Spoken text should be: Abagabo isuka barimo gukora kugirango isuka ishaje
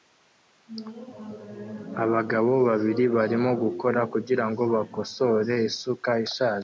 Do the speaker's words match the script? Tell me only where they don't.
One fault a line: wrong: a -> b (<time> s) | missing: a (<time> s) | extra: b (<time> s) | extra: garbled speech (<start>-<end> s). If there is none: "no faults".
wrong: isuka -> babiri (2.7 s)
extra: bakosore (4.7 s)